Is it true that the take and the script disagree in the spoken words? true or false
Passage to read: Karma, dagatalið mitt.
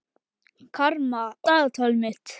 false